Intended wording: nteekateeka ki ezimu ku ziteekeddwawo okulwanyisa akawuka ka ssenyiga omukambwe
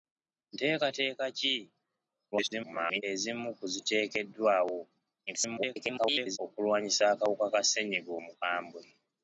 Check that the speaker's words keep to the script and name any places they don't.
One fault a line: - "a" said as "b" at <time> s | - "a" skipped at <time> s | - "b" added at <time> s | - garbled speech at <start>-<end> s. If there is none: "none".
- garbled speech at 2.3-3.0 s
- garbled speech at 5.3-6.4 s